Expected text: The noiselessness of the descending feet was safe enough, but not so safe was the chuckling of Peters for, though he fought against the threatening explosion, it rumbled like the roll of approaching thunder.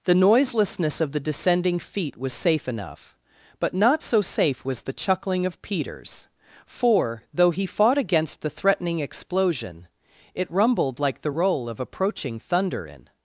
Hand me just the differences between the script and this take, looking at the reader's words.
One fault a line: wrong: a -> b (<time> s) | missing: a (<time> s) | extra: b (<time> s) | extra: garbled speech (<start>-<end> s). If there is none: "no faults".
extra: In (12.9 s)